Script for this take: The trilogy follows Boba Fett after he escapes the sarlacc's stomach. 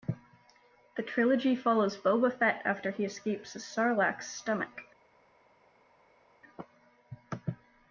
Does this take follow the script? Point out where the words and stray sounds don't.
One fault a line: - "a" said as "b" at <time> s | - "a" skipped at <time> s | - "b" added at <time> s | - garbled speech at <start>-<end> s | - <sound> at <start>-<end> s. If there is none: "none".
none